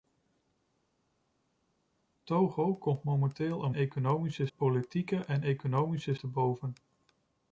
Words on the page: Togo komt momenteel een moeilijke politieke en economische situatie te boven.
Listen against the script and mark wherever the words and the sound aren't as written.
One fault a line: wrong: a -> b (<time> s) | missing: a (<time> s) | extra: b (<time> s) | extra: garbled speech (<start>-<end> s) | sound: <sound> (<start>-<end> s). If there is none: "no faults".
wrong: moeilijke -> economische (3.7 s)
missing: situatie (6.1 s)